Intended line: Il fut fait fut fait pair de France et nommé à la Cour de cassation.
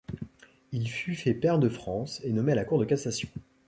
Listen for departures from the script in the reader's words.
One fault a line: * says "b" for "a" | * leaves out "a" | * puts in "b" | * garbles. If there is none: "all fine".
* leaves out "fut fait"